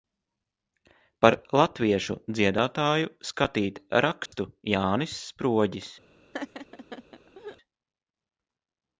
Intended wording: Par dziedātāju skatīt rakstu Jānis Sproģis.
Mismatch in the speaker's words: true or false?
true